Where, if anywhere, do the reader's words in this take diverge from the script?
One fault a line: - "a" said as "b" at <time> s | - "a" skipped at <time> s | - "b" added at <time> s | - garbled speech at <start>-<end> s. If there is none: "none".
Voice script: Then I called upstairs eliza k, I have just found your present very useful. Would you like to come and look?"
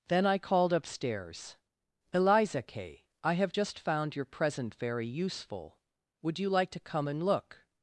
none